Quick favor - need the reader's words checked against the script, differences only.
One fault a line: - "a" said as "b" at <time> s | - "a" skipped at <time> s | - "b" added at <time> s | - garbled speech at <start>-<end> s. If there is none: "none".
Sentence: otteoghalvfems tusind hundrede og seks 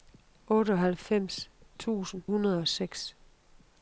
none